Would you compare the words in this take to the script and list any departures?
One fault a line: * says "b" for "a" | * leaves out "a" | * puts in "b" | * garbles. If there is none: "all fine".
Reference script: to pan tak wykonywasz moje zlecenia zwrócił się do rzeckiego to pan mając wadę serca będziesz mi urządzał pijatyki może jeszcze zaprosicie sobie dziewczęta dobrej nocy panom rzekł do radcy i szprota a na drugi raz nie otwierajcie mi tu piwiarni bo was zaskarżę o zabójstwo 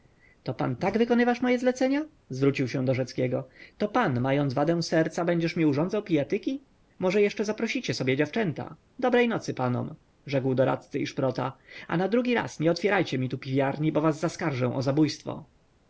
all fine